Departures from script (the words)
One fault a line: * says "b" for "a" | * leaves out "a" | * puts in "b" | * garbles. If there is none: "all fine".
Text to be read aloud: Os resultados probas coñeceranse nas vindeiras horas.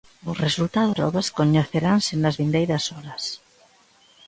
all fine